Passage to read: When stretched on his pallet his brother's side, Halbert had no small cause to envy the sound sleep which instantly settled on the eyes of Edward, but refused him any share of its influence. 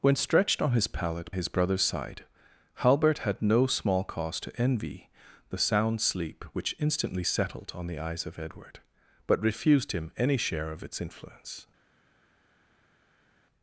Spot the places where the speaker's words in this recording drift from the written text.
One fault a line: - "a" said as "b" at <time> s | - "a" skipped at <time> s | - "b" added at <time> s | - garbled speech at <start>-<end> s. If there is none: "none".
none